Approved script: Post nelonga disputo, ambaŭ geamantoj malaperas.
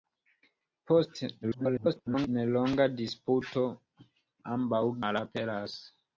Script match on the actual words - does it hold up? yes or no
no